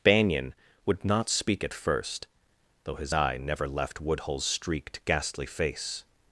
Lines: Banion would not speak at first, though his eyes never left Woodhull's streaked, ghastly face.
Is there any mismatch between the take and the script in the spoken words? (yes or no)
yes